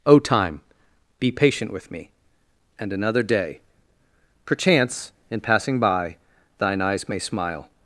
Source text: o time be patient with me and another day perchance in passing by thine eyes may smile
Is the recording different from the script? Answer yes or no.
no